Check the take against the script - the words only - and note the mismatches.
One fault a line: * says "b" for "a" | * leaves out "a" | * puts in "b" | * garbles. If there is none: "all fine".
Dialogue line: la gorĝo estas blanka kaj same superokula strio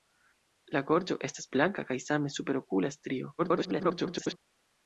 * garbles